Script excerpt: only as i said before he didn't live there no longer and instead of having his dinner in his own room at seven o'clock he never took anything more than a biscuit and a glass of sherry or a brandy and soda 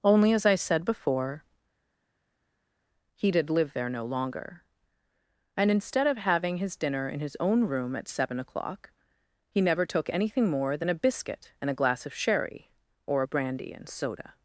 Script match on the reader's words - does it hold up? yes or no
no